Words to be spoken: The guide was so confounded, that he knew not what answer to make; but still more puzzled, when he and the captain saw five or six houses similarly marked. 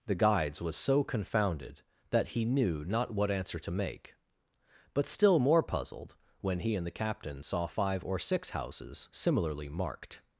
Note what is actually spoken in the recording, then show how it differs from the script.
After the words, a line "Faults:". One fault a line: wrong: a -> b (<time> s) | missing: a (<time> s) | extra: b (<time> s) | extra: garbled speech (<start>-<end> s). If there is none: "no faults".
The guides was so confounded, that he knew not what answer to make; but still more puzzled, when he and the captain saw five or six houses similarly marked.
Faults:
wrong: guide -> guides (0.1 s)